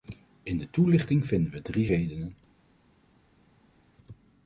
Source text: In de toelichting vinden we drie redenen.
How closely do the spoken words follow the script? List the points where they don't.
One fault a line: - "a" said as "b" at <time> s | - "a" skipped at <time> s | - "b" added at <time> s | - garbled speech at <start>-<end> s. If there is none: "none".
none